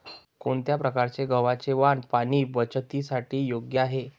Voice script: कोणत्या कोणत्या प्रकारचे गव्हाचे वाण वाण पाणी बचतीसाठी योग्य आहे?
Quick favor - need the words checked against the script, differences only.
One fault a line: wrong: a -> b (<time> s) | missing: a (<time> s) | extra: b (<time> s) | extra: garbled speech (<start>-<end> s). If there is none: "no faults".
missing: कोणत्या (0.8 s)
missing: वाण (2.0 s)